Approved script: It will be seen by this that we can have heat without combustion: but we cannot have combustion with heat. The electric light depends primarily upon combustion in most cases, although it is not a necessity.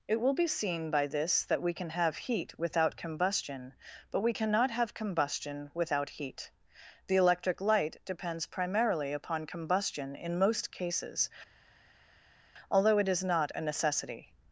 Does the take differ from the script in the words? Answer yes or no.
yes